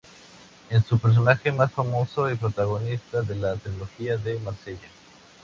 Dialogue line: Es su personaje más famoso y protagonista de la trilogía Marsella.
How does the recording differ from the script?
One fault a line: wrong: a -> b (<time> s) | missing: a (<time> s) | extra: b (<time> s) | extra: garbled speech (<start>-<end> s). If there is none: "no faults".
extra: de (4.2 s)